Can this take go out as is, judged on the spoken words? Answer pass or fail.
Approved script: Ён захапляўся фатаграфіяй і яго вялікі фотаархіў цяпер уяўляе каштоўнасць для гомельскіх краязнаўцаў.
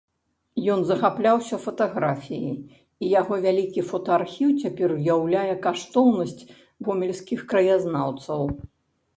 fail